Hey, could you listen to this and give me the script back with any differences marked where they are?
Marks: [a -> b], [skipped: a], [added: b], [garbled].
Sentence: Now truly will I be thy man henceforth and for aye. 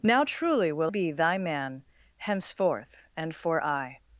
Now truly will [skipped: I] be thy man henceforth and for aye.